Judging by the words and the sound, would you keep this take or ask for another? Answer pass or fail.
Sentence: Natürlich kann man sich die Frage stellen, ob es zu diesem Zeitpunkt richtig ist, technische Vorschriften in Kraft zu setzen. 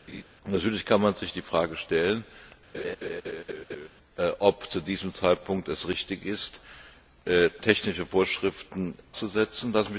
fail